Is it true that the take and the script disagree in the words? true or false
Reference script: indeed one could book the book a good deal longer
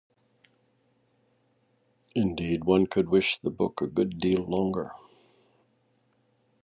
true